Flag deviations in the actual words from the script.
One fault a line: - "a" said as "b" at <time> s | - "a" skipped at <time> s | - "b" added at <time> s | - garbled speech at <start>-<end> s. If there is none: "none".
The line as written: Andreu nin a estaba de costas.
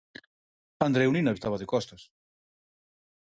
none